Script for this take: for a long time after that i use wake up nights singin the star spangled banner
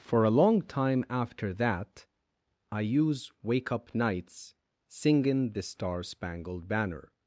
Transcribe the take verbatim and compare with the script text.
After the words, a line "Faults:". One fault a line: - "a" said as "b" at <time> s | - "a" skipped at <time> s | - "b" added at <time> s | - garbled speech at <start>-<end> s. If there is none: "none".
for a long time after that i use wake up nights singin the star spangled banner
Faults:
none